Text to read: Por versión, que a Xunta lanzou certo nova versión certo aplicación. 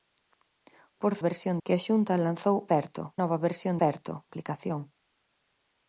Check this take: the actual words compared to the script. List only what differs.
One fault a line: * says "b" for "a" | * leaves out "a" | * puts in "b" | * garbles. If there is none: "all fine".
all fine